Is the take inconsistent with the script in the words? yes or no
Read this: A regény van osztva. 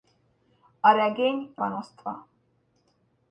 no